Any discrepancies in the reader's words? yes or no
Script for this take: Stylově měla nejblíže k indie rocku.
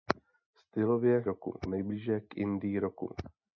yes